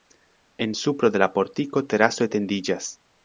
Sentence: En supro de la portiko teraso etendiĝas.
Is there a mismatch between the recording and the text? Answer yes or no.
no